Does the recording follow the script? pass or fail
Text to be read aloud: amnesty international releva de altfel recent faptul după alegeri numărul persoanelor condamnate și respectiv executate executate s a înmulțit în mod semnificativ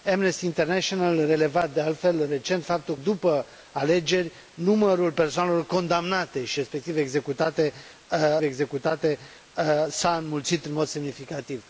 pass